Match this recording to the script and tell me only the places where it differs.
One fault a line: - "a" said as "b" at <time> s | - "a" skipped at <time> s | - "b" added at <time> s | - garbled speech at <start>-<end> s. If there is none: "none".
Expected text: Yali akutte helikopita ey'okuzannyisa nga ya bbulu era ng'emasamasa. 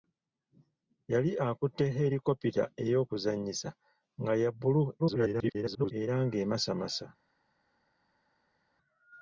- garbled speech at 5.0-5.9 s